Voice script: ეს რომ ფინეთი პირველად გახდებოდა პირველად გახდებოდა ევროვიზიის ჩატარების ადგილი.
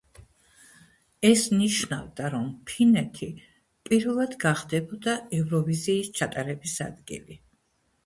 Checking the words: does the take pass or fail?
fail